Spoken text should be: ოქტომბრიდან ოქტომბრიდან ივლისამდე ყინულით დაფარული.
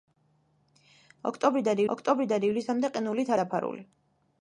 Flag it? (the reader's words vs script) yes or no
no